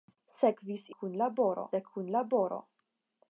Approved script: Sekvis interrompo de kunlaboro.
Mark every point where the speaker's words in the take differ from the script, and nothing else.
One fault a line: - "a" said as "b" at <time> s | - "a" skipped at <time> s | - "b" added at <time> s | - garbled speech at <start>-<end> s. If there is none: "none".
- "interrompo" said as "kunlaboro" at 1.0 s